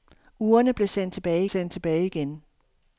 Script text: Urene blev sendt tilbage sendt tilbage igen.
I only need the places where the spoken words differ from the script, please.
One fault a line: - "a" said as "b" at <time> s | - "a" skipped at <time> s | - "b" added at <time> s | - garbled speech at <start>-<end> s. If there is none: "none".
none